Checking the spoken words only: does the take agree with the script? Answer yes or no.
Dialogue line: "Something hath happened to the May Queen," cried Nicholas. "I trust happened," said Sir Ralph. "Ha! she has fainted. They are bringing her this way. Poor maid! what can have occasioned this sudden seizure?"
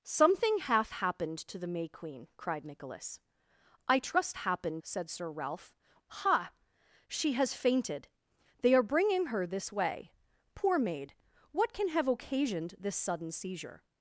yes